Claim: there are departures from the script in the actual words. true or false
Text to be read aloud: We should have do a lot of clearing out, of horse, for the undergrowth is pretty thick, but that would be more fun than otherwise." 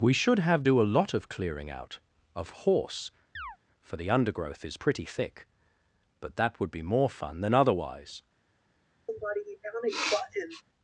false